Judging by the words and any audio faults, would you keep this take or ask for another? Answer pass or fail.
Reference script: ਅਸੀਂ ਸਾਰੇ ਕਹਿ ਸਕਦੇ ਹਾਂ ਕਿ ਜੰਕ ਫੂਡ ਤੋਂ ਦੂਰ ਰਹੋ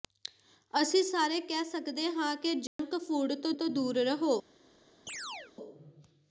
fail